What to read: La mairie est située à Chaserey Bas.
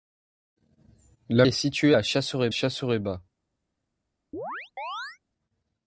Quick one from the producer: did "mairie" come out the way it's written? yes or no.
no